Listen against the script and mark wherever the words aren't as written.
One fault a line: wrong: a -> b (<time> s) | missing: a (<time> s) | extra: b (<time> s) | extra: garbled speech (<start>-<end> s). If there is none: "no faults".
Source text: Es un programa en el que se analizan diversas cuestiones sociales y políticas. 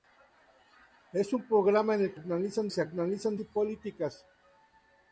wrong: que -> analizan (2.1 s)
missing: diversas cuestiones sociales (3.4 s)